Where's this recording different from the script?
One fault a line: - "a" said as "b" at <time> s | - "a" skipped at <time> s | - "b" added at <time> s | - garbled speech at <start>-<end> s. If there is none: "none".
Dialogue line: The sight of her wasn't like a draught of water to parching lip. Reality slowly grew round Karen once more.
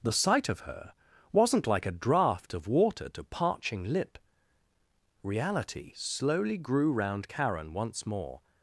none